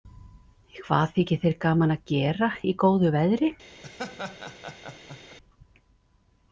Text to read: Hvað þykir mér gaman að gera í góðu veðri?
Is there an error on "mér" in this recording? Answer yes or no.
yes